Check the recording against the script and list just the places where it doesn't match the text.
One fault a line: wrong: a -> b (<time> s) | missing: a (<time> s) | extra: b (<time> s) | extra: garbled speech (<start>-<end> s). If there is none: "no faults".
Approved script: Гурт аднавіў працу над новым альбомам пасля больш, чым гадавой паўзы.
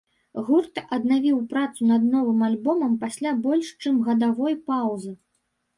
no faults